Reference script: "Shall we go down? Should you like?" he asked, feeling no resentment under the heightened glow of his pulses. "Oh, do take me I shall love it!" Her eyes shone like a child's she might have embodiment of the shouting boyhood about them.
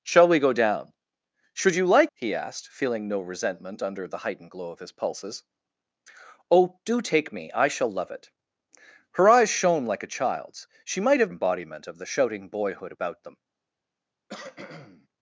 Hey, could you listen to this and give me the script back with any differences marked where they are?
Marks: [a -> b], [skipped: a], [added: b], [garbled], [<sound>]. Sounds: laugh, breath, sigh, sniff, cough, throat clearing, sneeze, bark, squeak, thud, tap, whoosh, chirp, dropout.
"Shall we go down? Should you like?" he asked, feeling no resentment under the heightened glow of his pulses. "Oh, do take me I shall love it!" Her eyes shone like a child's she might have embodiment of the shouting boyhood about them. [cough]